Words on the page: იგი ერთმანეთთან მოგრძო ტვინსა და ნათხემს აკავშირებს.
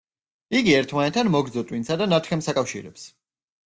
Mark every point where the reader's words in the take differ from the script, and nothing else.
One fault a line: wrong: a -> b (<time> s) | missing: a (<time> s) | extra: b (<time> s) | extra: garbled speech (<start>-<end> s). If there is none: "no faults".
no faults